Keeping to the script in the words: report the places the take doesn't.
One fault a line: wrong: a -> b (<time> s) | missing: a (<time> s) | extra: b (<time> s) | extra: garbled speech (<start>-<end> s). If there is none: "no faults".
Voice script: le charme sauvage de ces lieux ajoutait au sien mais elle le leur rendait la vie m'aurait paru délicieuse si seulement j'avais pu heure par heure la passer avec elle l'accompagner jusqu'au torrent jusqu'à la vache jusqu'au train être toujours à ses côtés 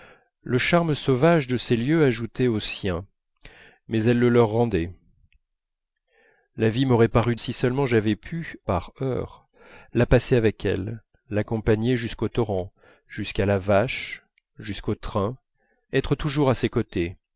missing: délicieuse (7.3 s)
missing: heure (8.6 s)